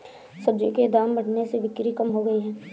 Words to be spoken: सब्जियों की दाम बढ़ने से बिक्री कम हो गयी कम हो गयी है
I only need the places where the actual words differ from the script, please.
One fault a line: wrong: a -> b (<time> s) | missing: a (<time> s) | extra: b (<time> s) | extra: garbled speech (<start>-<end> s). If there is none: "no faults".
wrong: की -> के (0.7 s)
missing: कम हो गयी (2.4 s)